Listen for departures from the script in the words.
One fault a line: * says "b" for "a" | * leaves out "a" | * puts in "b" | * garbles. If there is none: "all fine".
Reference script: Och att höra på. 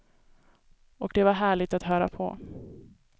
* puts in "det var härligt"